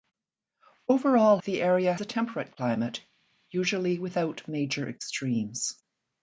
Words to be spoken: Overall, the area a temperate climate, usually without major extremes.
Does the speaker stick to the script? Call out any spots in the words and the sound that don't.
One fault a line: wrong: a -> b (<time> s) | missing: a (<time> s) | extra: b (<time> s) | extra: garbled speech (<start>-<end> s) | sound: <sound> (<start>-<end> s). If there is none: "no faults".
no faults